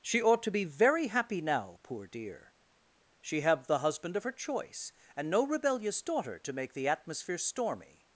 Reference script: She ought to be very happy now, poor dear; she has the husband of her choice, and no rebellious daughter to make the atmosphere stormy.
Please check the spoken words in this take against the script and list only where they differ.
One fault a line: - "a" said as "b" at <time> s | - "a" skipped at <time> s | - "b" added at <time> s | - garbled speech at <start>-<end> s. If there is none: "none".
- "has" said as "have" at 3.4 s